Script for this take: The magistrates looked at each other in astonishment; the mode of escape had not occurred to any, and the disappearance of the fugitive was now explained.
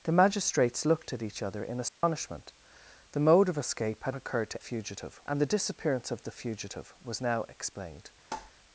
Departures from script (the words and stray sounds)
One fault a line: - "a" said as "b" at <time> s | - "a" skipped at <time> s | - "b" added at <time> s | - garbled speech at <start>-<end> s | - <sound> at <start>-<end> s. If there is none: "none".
- dropout at 1.9-2.0 s
- "not" skipped at 4.2 s
- "any" said as "fugitive" at 4.6 s
- tap at 8.3-8.5 s